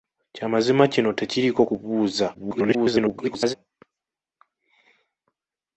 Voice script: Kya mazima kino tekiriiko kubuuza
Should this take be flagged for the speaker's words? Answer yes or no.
yes